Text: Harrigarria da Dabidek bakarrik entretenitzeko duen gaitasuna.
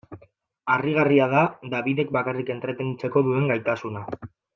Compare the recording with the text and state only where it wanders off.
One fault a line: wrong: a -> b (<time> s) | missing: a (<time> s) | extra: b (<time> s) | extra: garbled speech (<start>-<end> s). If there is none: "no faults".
no faults